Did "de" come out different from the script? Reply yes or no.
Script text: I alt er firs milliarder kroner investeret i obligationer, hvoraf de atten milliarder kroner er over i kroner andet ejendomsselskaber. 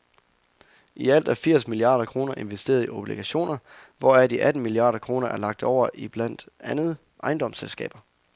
no